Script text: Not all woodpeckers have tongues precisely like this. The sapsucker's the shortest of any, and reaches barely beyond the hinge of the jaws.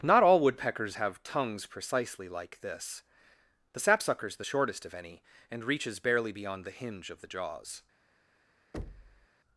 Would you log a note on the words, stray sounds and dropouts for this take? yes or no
yes